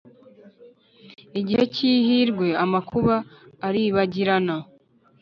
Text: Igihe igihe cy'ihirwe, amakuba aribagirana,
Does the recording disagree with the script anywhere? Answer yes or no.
yes